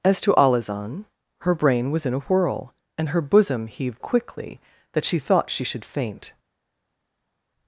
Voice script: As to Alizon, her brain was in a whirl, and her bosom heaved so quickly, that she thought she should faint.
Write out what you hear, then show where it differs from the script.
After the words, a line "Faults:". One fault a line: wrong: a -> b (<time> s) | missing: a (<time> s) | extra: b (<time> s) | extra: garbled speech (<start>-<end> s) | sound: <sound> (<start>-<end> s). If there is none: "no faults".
As to Alizon, her brain was in a whirl, and her bosom heaved quickly, that she thought she should faint.
Faults:
missing: so (4.0 s)